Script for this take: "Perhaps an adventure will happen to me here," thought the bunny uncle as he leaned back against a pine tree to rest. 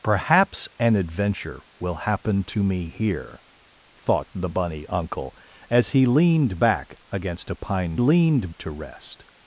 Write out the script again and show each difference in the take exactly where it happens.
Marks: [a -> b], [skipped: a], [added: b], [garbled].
"Perhaps an adventure will happen to me here," thought the bunny uncle as he leaned back against a pine [tree -> leaned] to rest.